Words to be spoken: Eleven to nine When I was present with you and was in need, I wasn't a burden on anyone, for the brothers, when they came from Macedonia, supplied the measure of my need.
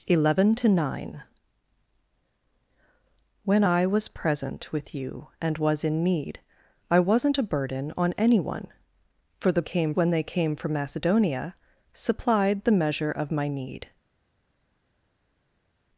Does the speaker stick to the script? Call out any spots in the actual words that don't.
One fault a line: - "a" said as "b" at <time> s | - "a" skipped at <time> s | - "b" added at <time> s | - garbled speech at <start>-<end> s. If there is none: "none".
- "brothers" said as "came" at 9.6 s